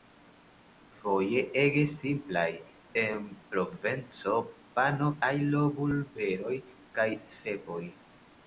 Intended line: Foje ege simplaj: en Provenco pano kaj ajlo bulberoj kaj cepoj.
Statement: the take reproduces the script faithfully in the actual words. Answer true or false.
false